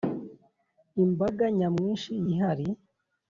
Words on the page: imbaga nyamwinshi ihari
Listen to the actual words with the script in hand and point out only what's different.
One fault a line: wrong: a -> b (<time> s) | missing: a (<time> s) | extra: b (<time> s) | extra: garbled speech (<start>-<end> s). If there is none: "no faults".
no faults